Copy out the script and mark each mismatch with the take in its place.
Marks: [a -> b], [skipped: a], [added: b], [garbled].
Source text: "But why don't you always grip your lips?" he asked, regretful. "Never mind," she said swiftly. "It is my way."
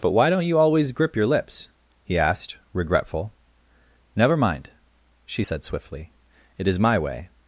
"But why don't you always grip your lips?" he asked, regretful. "Never mind," she said swiftly. "It is my way."